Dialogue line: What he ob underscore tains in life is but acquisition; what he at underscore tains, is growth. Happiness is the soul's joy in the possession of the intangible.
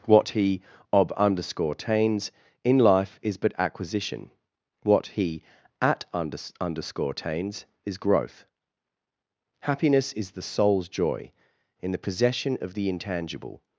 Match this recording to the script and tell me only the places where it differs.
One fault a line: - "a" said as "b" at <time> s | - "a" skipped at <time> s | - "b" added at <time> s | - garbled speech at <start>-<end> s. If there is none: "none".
- "under" added at 6.1 s